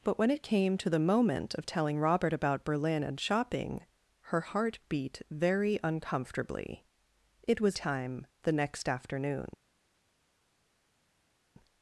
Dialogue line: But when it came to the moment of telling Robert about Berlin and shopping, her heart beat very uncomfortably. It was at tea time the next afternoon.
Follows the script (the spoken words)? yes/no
no